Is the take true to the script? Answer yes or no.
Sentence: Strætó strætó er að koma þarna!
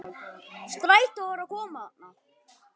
no